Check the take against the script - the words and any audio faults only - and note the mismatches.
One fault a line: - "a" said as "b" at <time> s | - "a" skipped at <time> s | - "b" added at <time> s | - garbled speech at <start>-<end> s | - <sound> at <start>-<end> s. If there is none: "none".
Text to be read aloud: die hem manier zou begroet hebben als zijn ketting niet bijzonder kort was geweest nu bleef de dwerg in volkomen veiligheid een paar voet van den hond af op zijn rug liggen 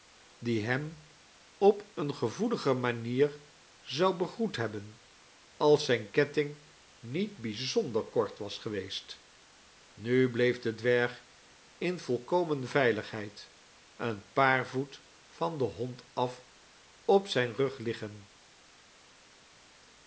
- "op eene gevoelige" added at 1.6 s